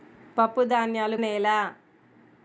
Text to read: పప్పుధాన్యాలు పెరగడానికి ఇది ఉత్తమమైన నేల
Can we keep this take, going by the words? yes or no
no